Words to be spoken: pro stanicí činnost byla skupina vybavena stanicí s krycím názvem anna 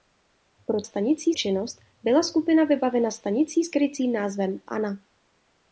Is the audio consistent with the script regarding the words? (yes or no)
yes